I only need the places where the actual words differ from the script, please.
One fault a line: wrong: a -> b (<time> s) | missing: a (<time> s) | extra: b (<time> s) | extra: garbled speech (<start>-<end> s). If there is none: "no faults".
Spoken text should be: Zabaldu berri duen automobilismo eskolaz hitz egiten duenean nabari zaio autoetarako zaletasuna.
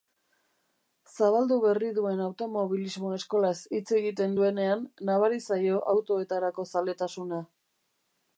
no faults